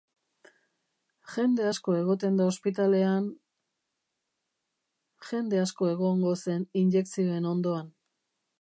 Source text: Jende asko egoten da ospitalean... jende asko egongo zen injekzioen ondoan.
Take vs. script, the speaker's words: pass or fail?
pass